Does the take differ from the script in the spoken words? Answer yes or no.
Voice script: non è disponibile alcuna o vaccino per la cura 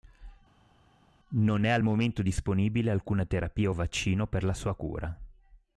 yes